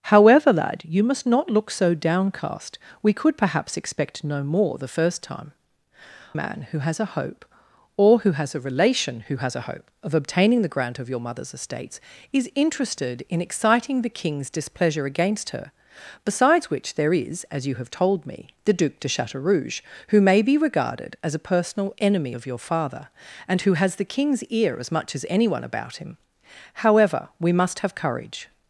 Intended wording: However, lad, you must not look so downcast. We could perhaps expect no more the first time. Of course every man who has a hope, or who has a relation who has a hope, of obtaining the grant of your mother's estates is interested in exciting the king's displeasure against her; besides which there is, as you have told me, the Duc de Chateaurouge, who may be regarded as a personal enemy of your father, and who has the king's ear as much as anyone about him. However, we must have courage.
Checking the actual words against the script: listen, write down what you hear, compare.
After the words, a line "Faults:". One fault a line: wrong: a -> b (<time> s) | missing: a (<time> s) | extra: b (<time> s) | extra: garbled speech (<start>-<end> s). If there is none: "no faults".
However, lad, you must not look so downcast. We could perhaps expect no more the first time. Man who has a hope, or who has a relation who has a hope, of obtaining the grant of your mother's estates is interested in exciting the king's displeasure against her; besides which there is, as you have told me, the Duc de Chateaurouge, who may be regarded as a personal enemy of your father, and who has the king's ear as much as anyone about him. However, we must have courage.
Faults:
missing: Of course every (5.5 s)